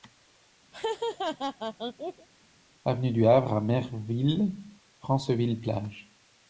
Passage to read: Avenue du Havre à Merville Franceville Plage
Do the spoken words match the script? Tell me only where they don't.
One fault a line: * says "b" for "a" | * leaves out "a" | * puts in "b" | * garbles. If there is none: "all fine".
all fine